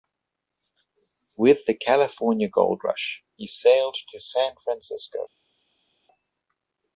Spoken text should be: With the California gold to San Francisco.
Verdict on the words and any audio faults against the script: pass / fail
fail